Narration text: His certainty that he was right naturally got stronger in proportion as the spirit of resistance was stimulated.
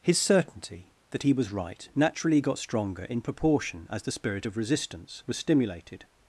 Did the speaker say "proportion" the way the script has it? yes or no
yes